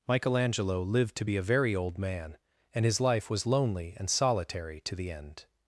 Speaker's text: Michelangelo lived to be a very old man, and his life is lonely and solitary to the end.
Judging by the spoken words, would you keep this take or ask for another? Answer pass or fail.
fail